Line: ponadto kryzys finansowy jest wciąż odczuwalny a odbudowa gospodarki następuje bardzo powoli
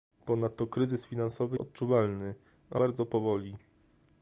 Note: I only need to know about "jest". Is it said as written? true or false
false